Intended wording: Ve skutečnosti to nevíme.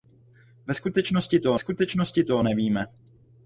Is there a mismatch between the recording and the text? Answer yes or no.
yes